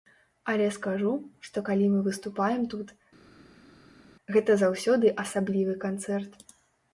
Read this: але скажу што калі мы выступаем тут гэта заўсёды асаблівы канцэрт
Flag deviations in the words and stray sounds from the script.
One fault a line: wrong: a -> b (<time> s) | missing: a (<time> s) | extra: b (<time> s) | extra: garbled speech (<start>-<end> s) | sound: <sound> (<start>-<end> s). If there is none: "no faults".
no faults